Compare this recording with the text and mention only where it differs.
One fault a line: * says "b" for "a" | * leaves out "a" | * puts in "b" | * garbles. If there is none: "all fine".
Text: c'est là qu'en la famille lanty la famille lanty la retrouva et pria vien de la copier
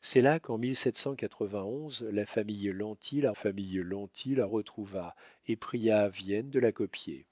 all fine